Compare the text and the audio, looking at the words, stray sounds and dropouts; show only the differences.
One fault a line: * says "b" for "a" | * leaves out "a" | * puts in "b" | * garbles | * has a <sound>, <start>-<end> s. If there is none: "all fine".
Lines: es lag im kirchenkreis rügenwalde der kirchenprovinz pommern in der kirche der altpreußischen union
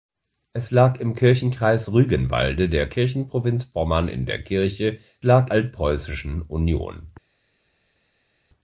* says "lag" for "der"